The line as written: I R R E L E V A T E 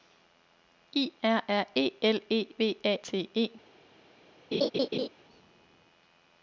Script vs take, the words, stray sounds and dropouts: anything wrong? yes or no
yes